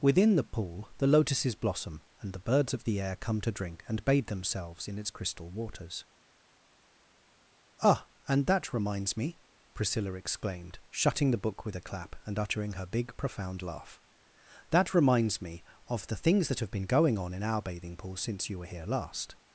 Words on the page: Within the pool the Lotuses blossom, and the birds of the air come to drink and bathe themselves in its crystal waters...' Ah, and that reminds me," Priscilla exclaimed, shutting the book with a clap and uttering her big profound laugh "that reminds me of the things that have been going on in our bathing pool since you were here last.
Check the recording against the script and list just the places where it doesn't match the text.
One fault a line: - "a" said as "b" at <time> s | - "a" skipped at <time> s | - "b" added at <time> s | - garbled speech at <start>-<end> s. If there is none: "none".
none